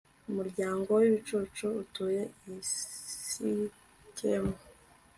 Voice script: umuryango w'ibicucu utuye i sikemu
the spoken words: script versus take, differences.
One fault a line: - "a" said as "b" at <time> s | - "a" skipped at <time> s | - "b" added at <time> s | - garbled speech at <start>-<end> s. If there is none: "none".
none